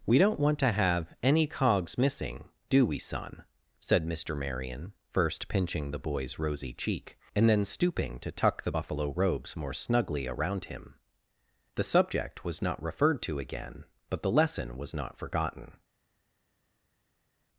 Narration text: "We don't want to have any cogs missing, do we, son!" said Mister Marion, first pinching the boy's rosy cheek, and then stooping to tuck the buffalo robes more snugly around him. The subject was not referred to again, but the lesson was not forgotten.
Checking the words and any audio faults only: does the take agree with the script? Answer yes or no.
yes